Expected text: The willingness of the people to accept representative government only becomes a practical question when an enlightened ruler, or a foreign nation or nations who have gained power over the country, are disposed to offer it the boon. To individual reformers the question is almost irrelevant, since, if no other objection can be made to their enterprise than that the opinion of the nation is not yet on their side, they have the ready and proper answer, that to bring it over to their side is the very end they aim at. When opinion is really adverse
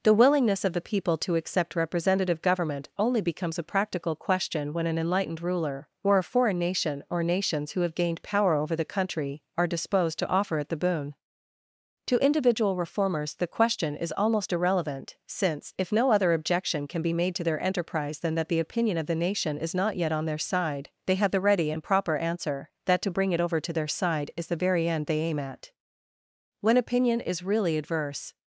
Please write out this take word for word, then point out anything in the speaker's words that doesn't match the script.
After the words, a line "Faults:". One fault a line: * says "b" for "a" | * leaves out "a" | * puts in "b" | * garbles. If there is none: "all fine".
The willingness of the people to accept representative government only becomes a practical question when an enlightened ruler, or a foreign nation or nations who have gained power over the country, are disposed to offer it the boon. To individual reformers the question is almost irrelevant, since, if no other objection can be made to their enterprise than that the opinion of the nation is not yet on their side, they have the ready and proper answer, that to bring it over to their side is the very end they aim at. When opinion is really adverse
Faults:
all fine